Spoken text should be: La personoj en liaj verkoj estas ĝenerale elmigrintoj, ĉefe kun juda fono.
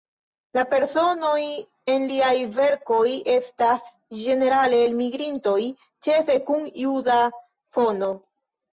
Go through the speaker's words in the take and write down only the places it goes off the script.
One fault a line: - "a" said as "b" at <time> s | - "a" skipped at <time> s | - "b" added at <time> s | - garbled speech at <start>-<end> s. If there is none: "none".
none